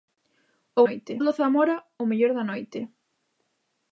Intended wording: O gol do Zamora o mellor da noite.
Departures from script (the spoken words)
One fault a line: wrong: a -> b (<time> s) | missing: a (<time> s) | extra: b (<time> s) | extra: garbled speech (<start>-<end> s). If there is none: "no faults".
wrong: gol -> noite (0.8 s)